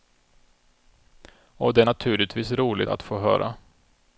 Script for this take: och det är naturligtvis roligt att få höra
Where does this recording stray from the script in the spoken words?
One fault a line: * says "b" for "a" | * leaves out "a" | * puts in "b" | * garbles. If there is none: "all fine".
all fine